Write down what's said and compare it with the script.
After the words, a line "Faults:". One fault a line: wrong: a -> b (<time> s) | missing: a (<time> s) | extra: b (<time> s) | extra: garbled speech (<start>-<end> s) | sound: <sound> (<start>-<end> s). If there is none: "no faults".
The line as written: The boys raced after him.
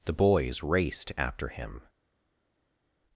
The boys raced after him.
Faults:
no faults